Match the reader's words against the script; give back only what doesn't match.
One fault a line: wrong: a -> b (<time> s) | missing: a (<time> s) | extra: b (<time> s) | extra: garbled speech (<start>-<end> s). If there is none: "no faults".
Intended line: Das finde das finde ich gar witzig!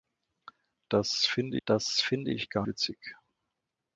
no faults